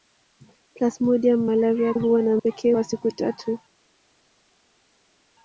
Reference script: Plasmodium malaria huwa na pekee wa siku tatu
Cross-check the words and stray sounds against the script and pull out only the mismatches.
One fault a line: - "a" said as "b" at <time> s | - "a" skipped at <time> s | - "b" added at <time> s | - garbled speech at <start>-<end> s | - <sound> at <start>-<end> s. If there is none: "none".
none